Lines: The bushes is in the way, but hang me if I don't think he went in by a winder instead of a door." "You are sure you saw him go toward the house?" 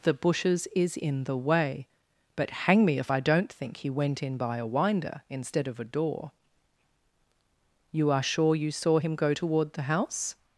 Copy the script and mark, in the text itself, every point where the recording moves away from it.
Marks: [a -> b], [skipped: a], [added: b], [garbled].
The bushes is in the way, but hang me if I don't think he went in by a winder instead of a door." "You are sure you saw him go toward the house?"